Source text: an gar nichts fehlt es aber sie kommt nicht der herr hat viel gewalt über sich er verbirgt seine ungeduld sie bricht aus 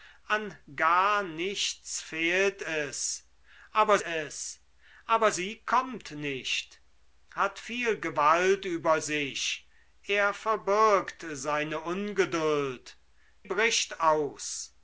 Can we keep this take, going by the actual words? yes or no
no